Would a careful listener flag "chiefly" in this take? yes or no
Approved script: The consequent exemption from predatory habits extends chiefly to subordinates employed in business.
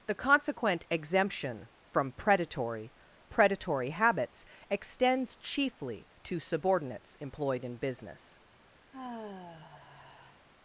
no